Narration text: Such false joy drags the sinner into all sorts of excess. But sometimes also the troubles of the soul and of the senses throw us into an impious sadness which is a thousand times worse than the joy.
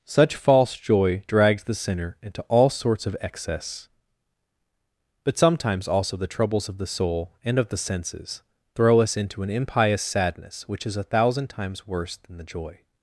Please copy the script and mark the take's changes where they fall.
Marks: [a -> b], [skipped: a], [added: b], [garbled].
Such false joy drags the sinner into all sorts of excess. But sometimes also the troubles of the soul and of the senses throw us into an impious sadness which is a thousand times worse than the joy.